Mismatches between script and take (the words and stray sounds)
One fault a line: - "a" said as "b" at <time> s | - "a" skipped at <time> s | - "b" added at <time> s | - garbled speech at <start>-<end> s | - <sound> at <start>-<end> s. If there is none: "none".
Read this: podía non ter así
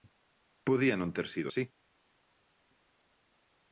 - "sido" added at 1.3 s